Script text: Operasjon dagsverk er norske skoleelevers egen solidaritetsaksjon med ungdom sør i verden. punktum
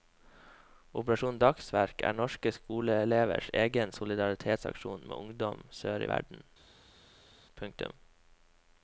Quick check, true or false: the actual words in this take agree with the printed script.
true